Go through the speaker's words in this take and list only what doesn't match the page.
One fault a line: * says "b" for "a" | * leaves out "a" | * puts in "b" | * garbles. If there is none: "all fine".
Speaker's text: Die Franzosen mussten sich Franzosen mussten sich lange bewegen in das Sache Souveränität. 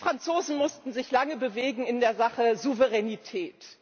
* leaves out "Franzosen mussten sich"
* says "der" for "das"